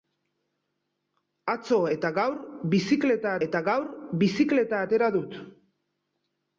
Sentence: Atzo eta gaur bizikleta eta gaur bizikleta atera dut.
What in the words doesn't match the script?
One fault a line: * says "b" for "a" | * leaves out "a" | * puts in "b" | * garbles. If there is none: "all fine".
all fine